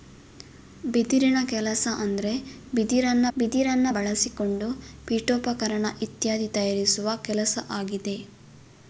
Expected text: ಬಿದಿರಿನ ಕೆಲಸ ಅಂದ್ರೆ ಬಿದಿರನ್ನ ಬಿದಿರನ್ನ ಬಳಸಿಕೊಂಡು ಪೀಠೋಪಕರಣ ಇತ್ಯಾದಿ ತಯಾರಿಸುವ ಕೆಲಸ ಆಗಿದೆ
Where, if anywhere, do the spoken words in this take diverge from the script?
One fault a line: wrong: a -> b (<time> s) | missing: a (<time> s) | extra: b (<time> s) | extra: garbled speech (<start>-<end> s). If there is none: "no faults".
no faults